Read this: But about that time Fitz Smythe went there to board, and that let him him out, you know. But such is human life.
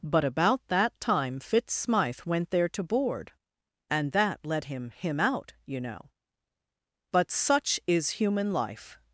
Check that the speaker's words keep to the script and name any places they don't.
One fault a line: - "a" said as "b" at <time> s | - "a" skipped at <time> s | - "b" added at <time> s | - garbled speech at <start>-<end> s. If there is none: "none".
none